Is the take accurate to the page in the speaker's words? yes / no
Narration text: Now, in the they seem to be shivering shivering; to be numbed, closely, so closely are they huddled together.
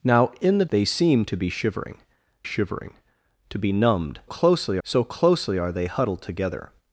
yes